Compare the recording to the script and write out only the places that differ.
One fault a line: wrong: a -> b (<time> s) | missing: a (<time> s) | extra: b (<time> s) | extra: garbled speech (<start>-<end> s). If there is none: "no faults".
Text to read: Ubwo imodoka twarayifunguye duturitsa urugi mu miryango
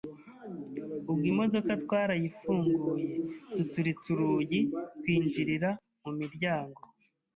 extra: twinjirira (5.0 s)